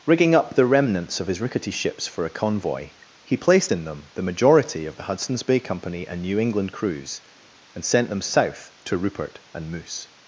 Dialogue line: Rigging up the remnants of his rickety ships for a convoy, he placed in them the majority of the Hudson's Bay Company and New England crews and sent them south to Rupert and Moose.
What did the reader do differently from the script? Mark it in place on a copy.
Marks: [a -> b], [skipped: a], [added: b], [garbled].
Rigging up the remnants of his rickety ships for a convoy, he placed in them the majority of the Hudson's Bay Company and New England crews and sent them south to Rupert and Moose.